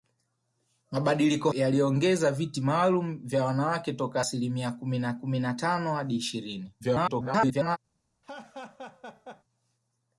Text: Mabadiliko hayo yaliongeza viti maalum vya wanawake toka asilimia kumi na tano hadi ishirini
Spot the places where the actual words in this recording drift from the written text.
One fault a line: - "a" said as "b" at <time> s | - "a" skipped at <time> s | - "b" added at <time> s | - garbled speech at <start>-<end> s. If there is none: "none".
- "hayo" skipped at 1.5 s
- "kumi na" added at 5.1 s
- garbled speech at 6.8-7.8 s